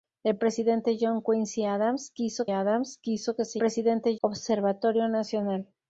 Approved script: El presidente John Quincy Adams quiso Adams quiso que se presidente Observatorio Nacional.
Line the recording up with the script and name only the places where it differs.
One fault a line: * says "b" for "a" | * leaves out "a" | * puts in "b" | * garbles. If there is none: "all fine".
all fine